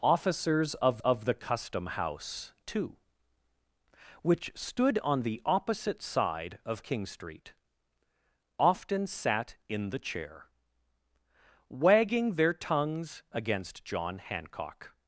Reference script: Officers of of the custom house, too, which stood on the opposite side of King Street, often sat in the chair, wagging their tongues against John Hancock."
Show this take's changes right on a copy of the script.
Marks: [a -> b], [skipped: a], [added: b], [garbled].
Officers of of the custom house, too, which stood on the opposite side of King Street, often sat in the chair, wagging their tongues against John Hancock."